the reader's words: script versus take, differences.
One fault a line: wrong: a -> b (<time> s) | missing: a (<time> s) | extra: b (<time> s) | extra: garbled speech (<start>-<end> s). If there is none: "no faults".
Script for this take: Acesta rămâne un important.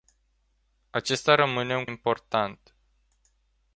no faults